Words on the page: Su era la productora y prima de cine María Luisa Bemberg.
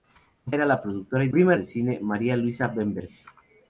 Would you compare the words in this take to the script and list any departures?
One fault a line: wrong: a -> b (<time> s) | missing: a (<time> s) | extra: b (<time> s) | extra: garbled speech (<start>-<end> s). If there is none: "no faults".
no faults